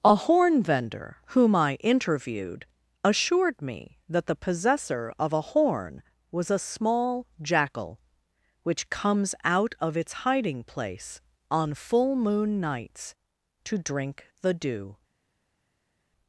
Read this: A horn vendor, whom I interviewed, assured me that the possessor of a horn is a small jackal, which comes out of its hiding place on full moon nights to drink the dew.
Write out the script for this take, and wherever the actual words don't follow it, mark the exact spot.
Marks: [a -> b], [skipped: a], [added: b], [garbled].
A horn vendor, whom I interviewed, assured me that the possessor of a horn [is -> was] a small jackal, which comes out of its hiding place on full moon nights to drink the dew.